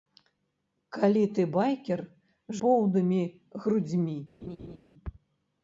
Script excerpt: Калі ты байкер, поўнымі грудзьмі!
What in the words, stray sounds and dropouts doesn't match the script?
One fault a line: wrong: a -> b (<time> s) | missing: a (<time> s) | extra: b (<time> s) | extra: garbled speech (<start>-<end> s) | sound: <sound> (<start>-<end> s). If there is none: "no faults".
sound: laugh (4.4-4.8 s)